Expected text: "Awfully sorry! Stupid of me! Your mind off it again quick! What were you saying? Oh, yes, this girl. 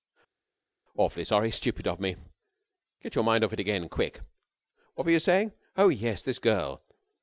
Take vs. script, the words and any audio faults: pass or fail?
fail